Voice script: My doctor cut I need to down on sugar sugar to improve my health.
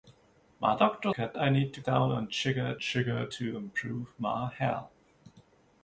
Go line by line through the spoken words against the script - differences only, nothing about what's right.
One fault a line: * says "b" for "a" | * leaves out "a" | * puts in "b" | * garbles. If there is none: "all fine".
all fine